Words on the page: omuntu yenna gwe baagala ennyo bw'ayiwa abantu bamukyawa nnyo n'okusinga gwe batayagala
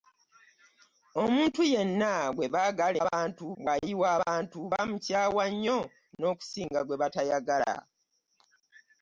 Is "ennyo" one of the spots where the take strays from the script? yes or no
yes